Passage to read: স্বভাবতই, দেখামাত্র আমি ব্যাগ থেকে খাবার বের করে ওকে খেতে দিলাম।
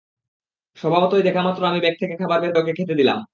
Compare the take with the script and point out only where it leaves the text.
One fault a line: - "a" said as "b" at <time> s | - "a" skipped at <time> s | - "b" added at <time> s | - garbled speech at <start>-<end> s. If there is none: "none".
- "করে" skipped at 2.5 s